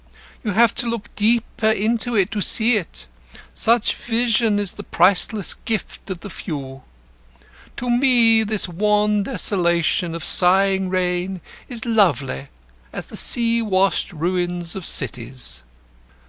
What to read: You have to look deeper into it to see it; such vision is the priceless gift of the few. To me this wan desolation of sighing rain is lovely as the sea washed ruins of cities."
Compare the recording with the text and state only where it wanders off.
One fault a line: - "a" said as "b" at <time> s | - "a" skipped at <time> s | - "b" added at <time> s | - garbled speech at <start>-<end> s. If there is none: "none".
none